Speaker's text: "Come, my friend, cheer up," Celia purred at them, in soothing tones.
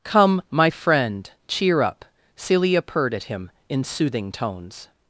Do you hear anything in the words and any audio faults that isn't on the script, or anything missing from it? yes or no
yes